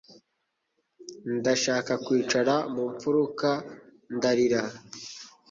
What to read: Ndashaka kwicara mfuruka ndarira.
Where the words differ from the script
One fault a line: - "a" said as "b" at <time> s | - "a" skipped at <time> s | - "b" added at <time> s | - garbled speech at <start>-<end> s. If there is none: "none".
- "mu" added at 2.7 s